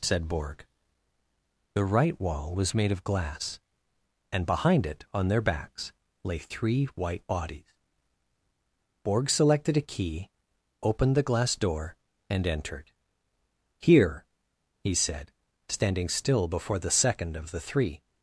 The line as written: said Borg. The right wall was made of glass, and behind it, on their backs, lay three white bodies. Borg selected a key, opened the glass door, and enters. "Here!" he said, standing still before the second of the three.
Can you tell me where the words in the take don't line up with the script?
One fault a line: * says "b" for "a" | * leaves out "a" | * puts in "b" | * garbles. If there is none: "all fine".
* says "entered" for "enters"